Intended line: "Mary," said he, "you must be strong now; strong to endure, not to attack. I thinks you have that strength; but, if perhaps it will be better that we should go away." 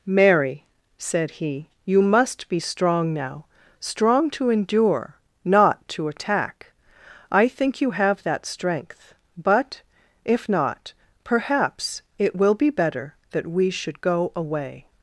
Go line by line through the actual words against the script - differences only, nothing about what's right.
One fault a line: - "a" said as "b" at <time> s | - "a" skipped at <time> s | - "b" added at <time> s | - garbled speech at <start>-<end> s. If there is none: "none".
- "thinks" said as "think" at 7.5 s
- "not" added at 10.5 s